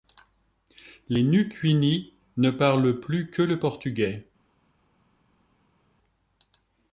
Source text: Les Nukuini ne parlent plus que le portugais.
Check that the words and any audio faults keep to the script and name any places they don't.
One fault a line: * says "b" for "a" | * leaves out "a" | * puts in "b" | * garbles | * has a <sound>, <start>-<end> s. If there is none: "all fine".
all fine